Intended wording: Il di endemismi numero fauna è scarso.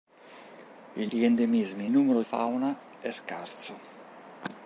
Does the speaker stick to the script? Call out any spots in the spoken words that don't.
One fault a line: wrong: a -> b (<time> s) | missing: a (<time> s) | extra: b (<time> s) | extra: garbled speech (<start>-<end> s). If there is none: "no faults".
no faults